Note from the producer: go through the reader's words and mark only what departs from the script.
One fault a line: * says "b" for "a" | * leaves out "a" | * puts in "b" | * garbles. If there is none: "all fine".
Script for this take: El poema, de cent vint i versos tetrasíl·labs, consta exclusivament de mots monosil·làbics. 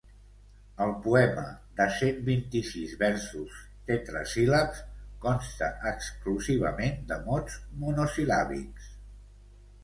* puts in "sis"